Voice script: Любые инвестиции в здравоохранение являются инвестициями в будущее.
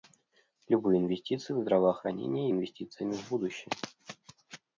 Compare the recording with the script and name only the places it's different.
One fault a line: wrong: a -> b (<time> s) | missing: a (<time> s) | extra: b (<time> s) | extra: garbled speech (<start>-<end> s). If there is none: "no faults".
missing: являются (2.5 s)